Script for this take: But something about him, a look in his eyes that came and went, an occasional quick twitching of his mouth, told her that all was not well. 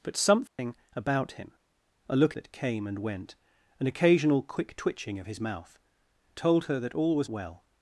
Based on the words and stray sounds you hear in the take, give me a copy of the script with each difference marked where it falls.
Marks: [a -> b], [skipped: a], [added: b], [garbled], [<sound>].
But something [dropout] about him, a look [skipped: in his eyes] that came and went, an occasional quick twitching of his mouth, told her that all was [skipped: not] well.